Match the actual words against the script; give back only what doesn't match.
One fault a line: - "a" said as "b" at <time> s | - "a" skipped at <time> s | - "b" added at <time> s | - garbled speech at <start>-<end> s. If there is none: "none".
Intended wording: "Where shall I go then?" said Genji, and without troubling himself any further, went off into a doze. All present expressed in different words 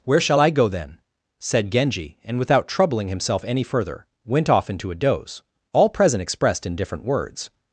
none